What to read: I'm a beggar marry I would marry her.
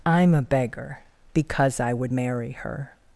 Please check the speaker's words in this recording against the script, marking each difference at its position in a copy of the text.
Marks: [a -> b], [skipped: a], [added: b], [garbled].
I'm a beggar [marry -> because] I would marry her.